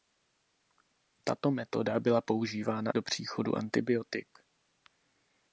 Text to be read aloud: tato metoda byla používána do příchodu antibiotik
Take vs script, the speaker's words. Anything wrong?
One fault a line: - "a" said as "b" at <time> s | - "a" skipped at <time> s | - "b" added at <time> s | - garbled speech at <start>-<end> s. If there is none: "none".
none